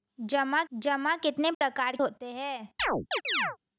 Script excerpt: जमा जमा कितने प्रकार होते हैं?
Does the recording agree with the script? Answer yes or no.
yes